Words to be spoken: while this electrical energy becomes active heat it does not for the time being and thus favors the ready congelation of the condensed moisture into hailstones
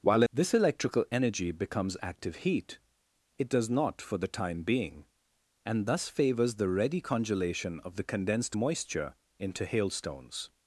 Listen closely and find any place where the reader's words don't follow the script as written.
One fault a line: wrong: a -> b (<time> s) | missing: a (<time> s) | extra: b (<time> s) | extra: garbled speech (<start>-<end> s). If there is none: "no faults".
no faults